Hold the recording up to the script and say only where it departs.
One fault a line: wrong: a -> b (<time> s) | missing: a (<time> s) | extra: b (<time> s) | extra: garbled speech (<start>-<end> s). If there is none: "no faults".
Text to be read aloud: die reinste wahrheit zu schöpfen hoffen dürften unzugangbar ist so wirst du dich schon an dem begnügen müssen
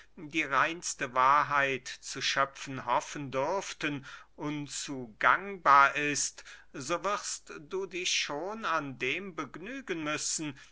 no faults